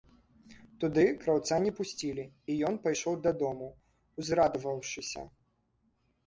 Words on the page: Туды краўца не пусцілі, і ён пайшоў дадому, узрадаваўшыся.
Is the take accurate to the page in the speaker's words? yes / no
yes